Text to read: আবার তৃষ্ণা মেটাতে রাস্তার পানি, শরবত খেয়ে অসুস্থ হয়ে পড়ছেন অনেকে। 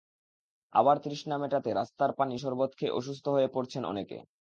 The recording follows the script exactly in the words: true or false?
true